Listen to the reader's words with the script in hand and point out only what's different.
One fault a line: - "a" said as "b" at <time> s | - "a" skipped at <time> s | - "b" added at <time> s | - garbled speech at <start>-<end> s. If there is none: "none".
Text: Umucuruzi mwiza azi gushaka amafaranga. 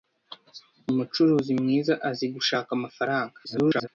- garbled speech at 3.4-3.9 s